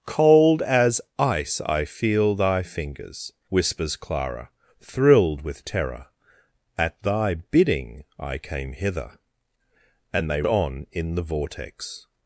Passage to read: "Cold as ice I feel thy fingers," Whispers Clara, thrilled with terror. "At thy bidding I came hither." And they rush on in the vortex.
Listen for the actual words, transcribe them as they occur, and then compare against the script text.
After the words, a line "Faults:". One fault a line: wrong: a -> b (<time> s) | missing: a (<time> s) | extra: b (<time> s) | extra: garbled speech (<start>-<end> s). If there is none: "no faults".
"Cold as ice I feel thy fingers," Whispers Clara, thrilled with terror. "At thy bidding I came hither." And they on in the vortex.
Faults:
missing: rush (10.4 s)